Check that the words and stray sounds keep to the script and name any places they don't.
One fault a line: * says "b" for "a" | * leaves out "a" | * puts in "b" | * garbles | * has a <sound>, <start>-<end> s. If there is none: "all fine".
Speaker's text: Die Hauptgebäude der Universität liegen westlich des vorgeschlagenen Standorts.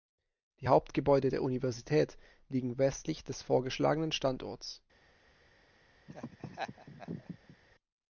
* has a laugh, 6.1-7.6 s